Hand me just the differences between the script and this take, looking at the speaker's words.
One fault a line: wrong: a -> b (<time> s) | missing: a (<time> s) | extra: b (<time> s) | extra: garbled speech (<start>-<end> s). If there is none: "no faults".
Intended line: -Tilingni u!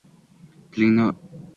no faults